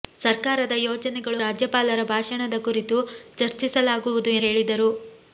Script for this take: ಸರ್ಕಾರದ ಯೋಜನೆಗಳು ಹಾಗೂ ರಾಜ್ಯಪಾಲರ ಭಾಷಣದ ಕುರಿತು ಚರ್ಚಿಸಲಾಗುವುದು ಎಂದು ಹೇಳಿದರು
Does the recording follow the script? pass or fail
fail